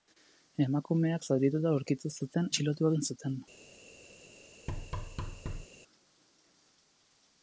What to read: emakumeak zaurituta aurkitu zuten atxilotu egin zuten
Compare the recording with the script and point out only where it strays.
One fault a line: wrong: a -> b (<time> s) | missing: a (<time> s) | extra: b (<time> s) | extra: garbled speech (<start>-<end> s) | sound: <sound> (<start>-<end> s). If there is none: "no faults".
sound: thud (4.7-5.7 s)